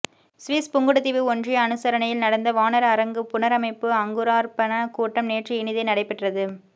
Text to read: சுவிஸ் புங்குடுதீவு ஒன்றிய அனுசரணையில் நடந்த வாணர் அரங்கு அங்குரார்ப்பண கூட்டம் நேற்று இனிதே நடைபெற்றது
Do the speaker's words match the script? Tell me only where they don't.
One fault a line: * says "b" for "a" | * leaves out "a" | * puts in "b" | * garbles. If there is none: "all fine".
* puts in "புனரமைப்பு"